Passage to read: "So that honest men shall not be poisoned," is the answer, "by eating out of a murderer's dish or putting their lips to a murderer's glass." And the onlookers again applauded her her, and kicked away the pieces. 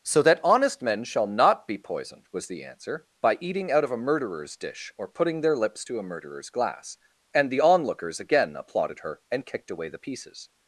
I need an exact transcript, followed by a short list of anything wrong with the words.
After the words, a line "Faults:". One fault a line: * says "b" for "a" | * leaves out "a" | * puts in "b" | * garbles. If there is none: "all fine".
"So that honest men shall not be poisoned," was the answer, "by eating out of a murderer's dish or putting their lips to a murderer's glass." And the onlookers again applauded her, and kicked away the pieces.
Faults:
* says "was" for "is"
* leaves out "her"